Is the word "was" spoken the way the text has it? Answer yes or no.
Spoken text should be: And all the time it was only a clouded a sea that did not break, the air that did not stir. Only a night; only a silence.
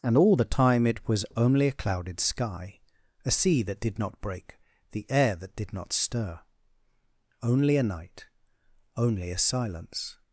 yes